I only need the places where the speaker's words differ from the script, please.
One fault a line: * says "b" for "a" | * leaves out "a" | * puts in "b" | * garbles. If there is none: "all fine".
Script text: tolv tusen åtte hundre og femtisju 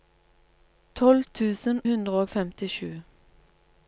* leaves out "åtte"